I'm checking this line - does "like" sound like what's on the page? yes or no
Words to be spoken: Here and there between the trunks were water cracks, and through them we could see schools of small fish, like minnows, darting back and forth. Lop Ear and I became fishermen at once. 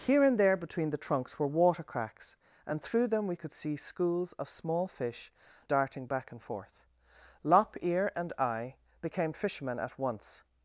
no